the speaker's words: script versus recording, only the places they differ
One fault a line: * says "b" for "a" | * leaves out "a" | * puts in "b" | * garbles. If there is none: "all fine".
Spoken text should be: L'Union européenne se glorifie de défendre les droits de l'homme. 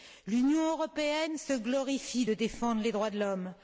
all fine